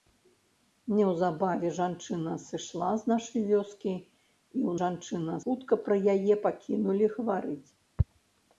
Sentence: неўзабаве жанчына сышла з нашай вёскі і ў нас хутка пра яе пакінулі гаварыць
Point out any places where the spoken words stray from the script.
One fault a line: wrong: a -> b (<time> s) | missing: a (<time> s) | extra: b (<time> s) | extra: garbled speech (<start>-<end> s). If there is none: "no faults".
wrong: нас -> жанчына (4.8 s)